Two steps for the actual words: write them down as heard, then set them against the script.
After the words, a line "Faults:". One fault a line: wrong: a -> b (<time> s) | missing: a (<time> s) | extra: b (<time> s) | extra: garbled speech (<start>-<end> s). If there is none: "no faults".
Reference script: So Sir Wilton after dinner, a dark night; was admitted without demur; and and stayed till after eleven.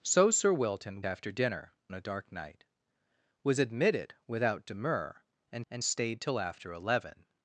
So Sir Wilton after dinner, a dark night; was admitted without demur; and and stayed till after eleven.
Faults:
no faults